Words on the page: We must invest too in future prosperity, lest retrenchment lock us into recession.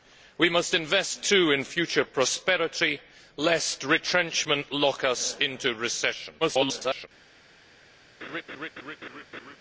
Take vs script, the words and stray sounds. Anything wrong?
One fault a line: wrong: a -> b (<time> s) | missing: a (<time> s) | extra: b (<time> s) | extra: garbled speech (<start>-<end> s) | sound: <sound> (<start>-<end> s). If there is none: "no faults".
extra: garbled speech (6.4-7.1 s)
sound: laugh (8.2-9.6 s)